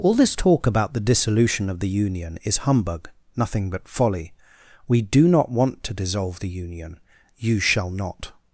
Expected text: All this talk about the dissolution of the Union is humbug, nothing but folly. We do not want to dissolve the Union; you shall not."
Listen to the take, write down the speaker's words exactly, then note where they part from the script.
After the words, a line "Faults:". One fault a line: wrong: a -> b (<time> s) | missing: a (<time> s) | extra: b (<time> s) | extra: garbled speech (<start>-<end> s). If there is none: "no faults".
All this talk about the dissolution of the Union is humbug, nothing but folly. We do not want to dissolve the Union; you shall not."
Faults:
no faults